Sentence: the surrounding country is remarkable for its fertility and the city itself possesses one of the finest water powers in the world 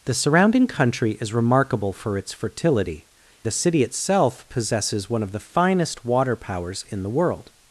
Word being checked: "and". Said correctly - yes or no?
no